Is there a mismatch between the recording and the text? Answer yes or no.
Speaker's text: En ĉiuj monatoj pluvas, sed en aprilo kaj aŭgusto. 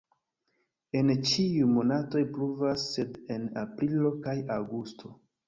no